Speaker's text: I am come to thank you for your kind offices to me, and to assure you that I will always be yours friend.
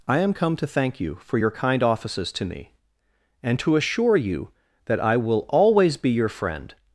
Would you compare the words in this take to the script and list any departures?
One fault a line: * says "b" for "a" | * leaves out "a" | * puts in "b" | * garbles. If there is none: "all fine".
* says "your" for "yours"